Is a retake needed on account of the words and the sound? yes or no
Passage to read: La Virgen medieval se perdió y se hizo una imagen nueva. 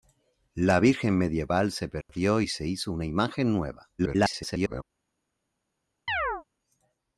yes